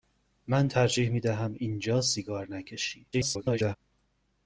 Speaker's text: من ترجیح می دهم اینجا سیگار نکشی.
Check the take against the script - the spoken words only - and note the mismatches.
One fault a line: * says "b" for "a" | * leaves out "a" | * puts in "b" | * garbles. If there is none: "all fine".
* garbles